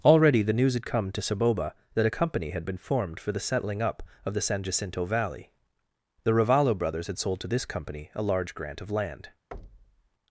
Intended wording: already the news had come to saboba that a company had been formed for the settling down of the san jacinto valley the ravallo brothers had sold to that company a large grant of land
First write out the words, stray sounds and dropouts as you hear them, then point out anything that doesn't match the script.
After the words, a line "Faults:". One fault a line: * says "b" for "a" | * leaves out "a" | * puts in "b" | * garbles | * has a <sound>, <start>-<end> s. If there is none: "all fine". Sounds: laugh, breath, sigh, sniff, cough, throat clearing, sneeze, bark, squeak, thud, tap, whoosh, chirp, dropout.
already the news had come to saboba that a company had been formed for the settling up of the san jacinto valley the ravallo brothers had sold to this company a large grant of land
Faults:
* says "up" for "down"
* says "this" for "that"
* has a thud, 9.5-10.1 s